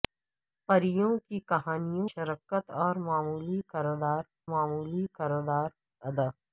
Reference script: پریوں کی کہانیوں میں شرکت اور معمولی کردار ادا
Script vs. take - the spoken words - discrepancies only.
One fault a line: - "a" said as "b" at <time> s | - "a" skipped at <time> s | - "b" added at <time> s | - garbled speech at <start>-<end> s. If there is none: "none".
- "میں" skipped at 2.1 s
- "معمولی کردار" added at 4.5 s